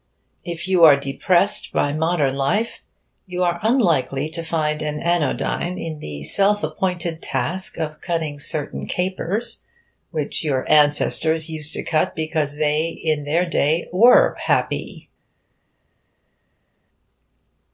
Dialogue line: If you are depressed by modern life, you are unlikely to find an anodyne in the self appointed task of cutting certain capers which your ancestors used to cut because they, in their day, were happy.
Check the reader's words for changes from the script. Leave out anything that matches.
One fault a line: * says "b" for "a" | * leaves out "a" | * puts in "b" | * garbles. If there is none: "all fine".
all fine